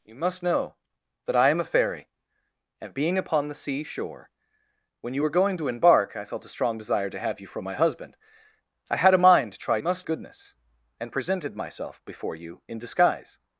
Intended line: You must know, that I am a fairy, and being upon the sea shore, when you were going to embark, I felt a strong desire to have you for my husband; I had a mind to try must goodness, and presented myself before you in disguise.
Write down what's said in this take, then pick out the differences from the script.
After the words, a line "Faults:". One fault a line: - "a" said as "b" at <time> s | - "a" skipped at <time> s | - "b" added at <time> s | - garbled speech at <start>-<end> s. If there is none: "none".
You must know, that I am a fairy, and being upon the sea shore, when you were going to embark, I felt a strong desire to have you for my husband; I had a mind to try must goodness, and presented myself before you in disguise.
Faults:
none